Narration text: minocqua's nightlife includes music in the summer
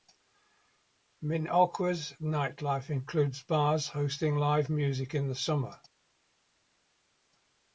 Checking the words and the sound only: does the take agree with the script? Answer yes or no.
no